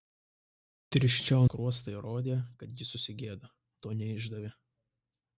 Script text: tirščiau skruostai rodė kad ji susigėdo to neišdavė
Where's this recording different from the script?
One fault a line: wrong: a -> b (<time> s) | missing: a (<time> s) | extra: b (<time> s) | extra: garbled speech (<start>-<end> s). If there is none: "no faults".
no faults